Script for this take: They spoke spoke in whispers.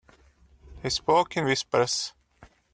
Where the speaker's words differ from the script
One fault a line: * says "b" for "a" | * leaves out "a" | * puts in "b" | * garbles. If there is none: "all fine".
* leaves out "spoke"